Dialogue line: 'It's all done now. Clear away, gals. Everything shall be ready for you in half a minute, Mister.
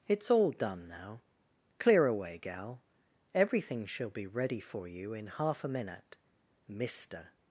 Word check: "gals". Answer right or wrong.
wrong